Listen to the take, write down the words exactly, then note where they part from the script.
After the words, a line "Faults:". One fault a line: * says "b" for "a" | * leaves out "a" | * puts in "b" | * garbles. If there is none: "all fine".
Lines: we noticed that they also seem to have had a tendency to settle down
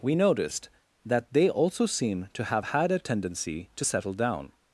we noticed that they also seem to have had a tendency to settle down
Faults:
all fine